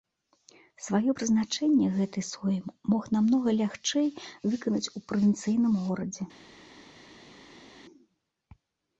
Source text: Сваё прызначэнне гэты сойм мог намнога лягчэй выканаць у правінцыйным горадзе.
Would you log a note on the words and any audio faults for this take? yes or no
no